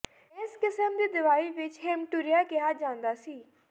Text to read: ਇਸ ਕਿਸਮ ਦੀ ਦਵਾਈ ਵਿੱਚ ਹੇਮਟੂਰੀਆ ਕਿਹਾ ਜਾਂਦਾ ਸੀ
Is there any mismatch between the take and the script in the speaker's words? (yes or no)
no